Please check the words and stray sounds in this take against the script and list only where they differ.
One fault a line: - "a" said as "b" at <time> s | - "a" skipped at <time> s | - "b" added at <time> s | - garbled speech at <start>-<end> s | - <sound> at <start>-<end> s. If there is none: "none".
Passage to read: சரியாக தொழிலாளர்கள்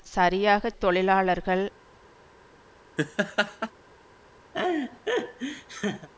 - laugh at 3.0-3.7 s
- laugh at 4.5-6.1 s